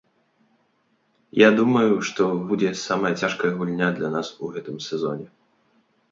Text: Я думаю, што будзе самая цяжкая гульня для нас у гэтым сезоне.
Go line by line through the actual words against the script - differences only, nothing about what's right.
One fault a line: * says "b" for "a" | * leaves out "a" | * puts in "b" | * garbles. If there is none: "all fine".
all fine